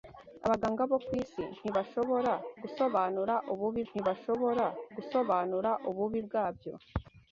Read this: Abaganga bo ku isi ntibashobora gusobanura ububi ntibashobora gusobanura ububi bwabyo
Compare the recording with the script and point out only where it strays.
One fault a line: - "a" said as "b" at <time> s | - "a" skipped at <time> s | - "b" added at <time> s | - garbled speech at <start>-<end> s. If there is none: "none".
none